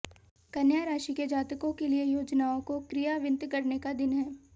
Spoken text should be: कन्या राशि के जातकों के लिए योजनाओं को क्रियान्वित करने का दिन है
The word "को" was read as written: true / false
true